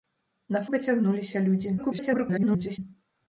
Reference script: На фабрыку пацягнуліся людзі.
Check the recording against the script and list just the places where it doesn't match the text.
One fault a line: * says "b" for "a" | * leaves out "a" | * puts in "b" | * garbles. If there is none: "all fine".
* leaves out "фабрыку"
* garbles